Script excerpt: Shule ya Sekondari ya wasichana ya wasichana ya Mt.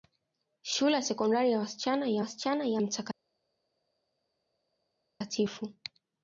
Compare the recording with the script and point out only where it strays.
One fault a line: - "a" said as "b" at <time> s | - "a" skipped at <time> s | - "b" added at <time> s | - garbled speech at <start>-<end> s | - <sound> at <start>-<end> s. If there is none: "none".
none